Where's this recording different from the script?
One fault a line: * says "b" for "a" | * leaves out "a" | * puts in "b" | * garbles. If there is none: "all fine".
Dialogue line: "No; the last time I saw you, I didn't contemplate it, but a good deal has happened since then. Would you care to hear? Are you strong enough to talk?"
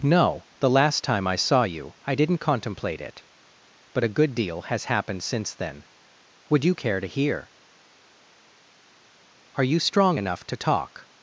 all fine